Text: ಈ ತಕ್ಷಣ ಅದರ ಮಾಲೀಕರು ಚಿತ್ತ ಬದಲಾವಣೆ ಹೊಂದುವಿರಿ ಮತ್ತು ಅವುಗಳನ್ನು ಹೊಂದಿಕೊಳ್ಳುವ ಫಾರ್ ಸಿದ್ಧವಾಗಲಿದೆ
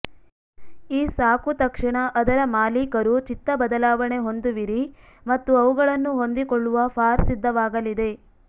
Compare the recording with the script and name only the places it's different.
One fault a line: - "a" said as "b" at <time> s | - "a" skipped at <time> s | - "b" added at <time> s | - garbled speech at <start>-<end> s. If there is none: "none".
- "ಸಾಕು" added at 1.1 s